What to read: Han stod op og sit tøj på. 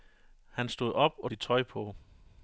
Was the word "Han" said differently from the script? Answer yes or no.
no